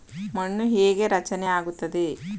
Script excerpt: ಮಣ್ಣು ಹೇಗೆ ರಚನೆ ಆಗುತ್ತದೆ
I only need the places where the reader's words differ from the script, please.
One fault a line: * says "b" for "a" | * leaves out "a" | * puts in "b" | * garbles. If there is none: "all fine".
all fine